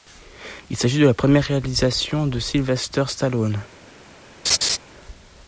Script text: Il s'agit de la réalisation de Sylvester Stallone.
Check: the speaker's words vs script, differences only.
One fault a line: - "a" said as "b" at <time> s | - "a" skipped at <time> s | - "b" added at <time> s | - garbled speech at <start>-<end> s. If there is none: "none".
- "première" added at 1.1 s